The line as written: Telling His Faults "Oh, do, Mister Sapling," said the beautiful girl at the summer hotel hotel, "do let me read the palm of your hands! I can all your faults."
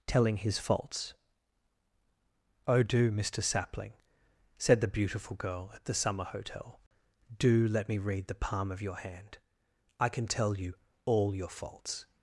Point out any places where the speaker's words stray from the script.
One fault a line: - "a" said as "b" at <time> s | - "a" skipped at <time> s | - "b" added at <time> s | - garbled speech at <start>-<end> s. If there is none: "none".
- "hotel" skipped at 6.8 s
- "hands" said as "hand" at 9.0 s
- "tell you" added at 10.3 s